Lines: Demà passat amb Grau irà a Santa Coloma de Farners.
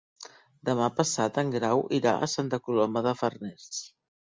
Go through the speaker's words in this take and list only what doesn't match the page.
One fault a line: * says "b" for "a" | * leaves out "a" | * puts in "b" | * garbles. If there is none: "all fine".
* says "en" for "amb"